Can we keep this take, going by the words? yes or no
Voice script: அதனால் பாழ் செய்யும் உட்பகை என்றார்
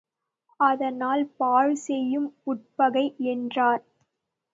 yes